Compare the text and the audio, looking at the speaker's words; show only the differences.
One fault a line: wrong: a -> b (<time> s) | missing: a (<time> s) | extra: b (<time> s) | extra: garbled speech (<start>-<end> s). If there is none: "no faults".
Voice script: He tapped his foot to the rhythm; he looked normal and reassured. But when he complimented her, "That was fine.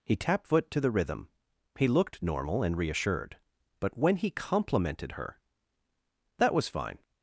missing: his (0.5 s)